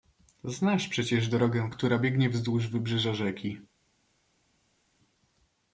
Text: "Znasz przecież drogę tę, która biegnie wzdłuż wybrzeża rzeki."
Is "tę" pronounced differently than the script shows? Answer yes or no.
yes